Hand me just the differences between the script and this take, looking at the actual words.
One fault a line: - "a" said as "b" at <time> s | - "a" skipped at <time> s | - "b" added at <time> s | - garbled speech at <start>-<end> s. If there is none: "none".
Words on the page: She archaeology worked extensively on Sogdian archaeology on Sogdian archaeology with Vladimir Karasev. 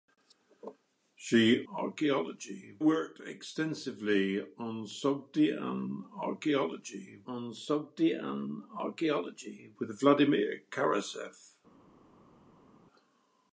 none